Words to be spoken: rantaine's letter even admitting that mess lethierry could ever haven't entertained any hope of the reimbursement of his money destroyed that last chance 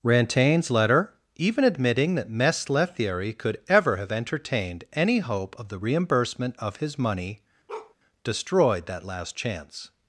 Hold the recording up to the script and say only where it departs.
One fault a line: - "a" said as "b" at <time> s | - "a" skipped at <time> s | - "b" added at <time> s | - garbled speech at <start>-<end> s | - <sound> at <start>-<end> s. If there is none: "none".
- "haven't" said as "have" at 4.0 s
- bark at 7.7-7.9 s